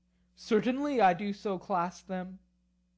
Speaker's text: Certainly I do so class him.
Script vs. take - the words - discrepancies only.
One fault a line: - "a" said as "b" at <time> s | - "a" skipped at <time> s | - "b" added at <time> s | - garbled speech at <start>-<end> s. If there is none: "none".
- "him" said as "them" at 2.0 s